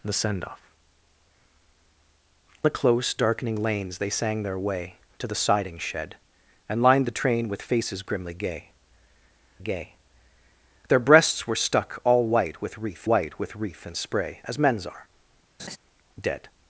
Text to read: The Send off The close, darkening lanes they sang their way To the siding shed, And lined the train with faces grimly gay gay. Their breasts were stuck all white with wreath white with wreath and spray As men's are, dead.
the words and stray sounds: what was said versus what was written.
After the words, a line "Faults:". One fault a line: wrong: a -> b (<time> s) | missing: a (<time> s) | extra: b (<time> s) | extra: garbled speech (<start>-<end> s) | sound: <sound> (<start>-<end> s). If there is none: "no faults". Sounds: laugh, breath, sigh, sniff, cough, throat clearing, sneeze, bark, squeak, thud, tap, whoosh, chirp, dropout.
The Send off The close, darkening lanes they sang their way To the siding shed, And lined the train with faces grimly gay gay. Their breasts were stuck all white with wreath white with wreath and spray As men's are, dead.
Faults:
sound: laugh (15.6-15.8 s)